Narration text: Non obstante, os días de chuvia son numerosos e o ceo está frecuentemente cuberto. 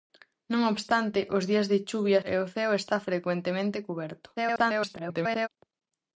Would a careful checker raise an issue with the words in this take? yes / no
yes